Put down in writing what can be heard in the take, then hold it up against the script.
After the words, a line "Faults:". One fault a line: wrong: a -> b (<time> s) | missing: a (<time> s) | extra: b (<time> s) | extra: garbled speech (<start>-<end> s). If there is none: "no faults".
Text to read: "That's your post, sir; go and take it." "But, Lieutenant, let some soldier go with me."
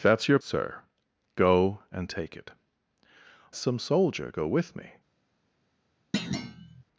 "That's your sir; go and take it." "Some soldier go with me."
Faults:
missing: post (0.4 s)
missing: But Lieutenant let (2.5 s)